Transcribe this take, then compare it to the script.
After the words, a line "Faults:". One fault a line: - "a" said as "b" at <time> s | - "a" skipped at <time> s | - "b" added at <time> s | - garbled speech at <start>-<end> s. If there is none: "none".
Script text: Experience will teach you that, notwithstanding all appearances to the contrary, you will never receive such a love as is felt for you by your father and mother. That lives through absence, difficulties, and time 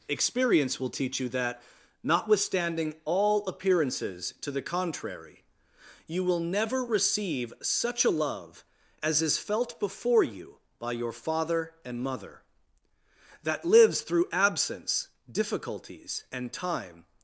Experience will teach you that, notwithstanding all appearances to the contrary, you will never receive such a love as is felt before you by your father and mother. That lives through absence, difficulties, and time
Faults:
- "for" said as "before" at 9.8 s